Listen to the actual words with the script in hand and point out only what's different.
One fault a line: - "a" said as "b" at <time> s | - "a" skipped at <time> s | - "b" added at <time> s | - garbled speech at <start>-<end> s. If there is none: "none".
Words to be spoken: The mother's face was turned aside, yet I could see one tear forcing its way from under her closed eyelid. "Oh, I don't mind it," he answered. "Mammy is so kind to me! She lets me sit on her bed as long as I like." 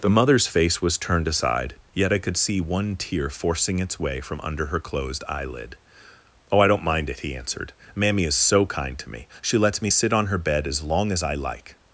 none